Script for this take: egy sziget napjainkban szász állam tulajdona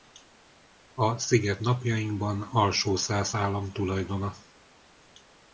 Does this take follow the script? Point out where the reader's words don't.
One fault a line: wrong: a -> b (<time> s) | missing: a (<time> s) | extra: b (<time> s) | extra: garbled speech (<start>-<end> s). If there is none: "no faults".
wrong: egy -> a (0.9 s)
extra: alsó (2.4 s)